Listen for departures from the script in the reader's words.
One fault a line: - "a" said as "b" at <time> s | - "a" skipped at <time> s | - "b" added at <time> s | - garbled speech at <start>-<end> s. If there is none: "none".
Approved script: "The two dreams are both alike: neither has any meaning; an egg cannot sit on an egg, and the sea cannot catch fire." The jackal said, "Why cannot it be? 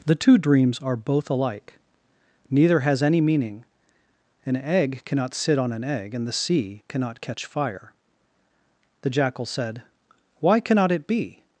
none